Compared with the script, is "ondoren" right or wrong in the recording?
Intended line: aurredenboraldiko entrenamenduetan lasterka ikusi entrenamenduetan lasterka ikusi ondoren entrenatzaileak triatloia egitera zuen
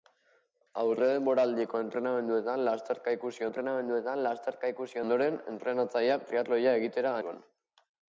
right